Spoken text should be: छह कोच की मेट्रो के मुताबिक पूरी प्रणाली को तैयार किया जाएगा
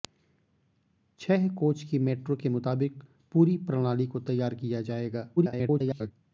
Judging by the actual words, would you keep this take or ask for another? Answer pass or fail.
fail